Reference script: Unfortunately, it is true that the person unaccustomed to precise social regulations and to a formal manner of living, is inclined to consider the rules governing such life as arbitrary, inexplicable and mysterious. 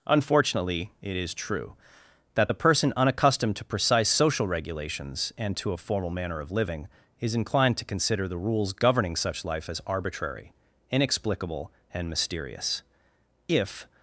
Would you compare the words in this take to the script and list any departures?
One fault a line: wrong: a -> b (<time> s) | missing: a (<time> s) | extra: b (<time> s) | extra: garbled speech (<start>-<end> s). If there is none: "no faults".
extra: If (13.5 s)